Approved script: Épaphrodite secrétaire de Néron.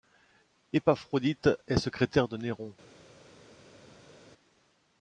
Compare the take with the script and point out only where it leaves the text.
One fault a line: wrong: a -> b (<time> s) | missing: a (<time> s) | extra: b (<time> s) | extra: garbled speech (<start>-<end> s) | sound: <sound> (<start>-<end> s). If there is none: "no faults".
extra: est (1.7 s)